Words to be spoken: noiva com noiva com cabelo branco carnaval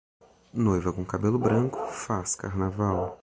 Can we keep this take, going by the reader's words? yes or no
no